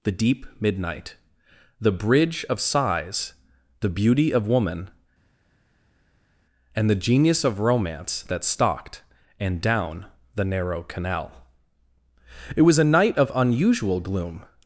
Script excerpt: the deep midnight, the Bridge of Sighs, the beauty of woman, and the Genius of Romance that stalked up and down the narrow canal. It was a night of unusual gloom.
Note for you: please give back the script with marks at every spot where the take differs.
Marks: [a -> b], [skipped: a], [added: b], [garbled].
the deep midnight, the Bridge of Sighs, the beauty of woman, and the Genius of Romance that stalked [skipped: up] and down the narrow canal. It was a night of unusual gloom.